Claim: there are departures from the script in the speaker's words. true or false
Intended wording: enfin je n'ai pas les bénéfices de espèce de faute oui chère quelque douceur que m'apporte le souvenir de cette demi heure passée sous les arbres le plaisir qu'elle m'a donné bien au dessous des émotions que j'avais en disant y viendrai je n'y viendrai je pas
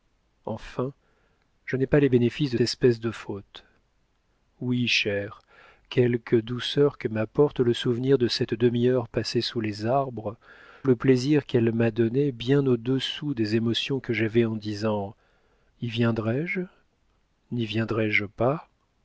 false